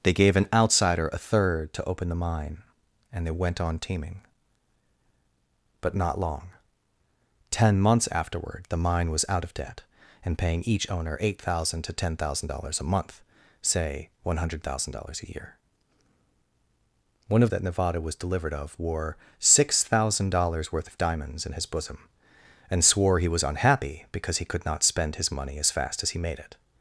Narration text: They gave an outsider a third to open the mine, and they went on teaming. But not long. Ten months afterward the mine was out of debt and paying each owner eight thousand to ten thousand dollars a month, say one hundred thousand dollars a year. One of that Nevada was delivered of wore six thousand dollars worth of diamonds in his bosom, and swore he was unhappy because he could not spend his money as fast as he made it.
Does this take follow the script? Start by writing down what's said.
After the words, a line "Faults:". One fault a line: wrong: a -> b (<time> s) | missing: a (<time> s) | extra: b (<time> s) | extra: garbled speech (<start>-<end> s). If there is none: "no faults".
They gave an outsider a third to open the mine, and they went on teaming. But not long. Ten months afterward the mine was out of debt and paying each owner eight thousand to ten thousand dollars a month, say one hundred thousand dollars a year. One of that Nevada was delivered of wore six thousand dollars worth of diamonds in his bosom, and swore he was unhappy because he could not spend his money as fast as he made it.
Faults:
no faults